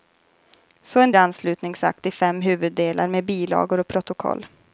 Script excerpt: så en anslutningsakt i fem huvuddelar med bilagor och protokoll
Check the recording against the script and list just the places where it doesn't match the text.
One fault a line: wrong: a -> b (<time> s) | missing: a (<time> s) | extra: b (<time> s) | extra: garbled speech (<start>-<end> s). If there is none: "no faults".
no faults